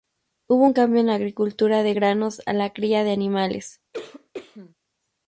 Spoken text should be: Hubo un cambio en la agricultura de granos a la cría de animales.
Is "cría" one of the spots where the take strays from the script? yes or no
no